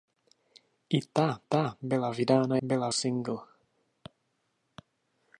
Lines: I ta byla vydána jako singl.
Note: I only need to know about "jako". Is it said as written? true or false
false